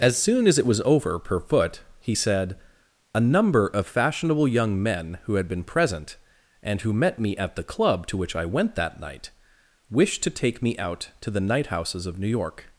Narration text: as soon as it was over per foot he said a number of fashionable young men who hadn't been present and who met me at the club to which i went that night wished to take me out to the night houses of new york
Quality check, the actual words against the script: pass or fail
fail